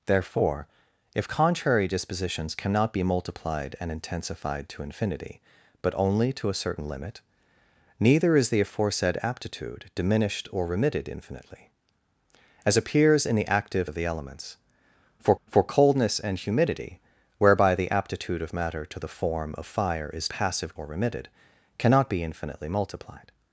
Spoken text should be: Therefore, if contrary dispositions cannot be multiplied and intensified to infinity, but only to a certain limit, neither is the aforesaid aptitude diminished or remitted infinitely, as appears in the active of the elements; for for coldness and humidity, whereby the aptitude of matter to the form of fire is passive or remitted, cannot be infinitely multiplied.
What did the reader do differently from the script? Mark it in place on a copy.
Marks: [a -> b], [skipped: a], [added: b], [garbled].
Therefore, if contrary dispositions cannot be multiplied and intensified to infinity, but only to a certain limit, neither is the aforesaid aptitude diminished or remitted infinitely, as appears in the active of the elements; for for coldness and humidity, whereby the aptitude of matter to the form of fire is passive or remitted, cannot be infinitely multiplied.